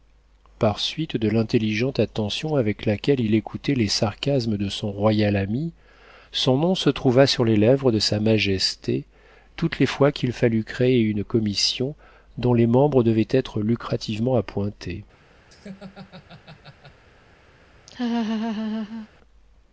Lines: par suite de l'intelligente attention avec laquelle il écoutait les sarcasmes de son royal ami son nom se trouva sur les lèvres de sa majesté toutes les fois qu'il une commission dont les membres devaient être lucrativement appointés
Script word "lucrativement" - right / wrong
right